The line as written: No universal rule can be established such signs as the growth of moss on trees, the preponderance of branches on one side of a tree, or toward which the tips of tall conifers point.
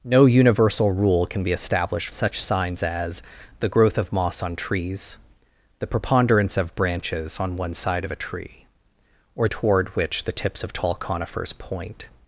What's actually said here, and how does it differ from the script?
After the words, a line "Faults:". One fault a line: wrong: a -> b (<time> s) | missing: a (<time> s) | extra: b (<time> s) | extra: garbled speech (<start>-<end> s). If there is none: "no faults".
No universal rule can be established such signs as the growth of moss on trees, the preponderance of branches on one side of a tree, or toward which the tips of tall conifers point.
Faults:
no faults